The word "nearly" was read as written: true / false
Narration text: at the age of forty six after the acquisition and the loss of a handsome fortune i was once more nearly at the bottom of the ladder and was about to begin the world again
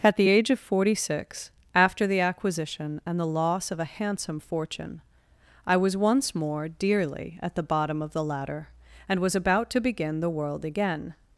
false